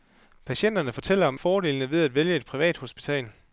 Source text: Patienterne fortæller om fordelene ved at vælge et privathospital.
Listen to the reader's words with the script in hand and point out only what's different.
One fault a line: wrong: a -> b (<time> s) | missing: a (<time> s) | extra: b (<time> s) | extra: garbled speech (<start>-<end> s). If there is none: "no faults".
no faults